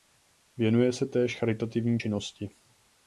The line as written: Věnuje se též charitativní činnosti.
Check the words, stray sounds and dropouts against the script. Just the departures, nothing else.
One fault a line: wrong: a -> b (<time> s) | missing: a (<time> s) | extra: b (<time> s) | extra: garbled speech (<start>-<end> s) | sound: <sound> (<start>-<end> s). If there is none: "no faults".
no faults